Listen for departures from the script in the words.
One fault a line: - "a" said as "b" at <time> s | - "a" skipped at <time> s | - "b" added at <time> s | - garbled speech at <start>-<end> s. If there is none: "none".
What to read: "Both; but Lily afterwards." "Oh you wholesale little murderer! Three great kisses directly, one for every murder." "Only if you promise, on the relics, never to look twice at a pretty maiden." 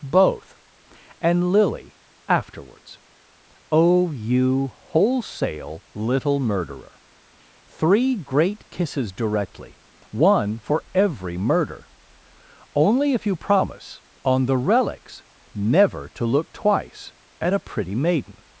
- "but" said as "and" at 1.2 s